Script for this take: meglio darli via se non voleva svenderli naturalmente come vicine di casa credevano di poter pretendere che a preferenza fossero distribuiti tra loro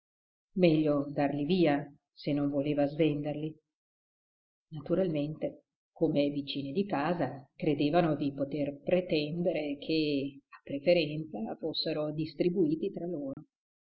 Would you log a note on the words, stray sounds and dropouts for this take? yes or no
yes